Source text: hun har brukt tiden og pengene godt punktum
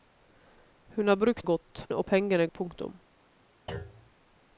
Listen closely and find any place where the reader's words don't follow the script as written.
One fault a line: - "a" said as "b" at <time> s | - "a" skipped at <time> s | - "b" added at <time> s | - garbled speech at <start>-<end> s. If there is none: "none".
- "tiden" said as "godt" at 1.4 s
- "godt" skipped at 2.5 s